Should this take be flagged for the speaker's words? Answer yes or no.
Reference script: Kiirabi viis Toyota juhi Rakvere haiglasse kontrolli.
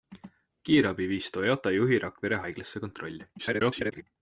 yes